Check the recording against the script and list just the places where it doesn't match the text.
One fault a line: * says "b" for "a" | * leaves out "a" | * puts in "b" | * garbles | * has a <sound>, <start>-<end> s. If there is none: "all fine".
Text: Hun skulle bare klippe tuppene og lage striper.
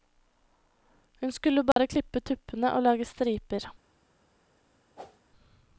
* has a dropout, 1.7-1.8 s
* has a whoosh, 5.0-5.2 s